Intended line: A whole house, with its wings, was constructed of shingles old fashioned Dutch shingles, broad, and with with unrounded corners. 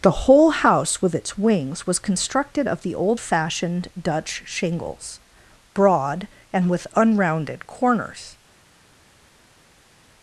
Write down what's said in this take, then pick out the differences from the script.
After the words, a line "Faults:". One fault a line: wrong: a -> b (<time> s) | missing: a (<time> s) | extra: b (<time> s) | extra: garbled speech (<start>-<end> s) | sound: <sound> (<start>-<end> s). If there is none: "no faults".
The whole house, with its wings, was constructed of the old fashioned Dutch shingles, broad, and with unrounded corners.
Faults:
wrong: A -> The (0.0 s)
wrong: shingles -> the (2.8 s)
missing: with (6.9 s)